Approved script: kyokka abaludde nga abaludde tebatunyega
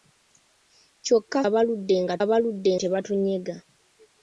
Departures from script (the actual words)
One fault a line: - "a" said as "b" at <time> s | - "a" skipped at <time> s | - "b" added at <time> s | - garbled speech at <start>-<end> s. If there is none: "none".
none